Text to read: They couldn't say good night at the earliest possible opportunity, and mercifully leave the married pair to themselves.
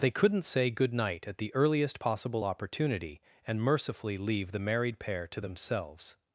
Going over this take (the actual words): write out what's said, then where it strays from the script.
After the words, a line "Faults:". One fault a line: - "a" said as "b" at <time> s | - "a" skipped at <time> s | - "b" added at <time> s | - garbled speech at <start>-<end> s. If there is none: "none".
They couldn't say good night at the earliest possible opportunity, and mercifully leave the married pair to themselves.
Faults:
none